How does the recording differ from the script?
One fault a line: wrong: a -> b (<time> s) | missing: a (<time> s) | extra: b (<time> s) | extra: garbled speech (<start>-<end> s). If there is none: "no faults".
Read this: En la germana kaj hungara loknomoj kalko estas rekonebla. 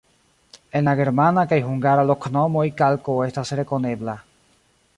no faults